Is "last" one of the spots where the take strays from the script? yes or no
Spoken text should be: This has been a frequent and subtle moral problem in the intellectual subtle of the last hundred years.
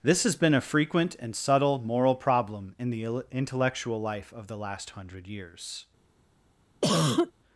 no